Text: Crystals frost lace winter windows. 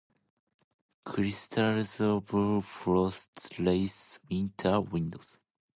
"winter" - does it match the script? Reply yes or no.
yes